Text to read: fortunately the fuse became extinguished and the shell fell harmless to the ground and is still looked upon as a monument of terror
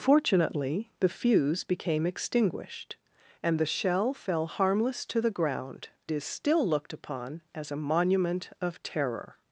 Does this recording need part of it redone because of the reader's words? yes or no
yes